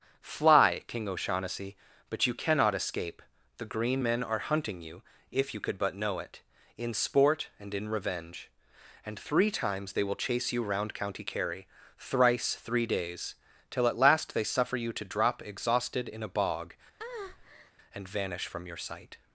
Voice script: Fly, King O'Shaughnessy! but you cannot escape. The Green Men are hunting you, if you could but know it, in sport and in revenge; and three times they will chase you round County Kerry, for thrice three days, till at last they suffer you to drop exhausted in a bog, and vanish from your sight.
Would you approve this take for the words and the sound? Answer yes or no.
no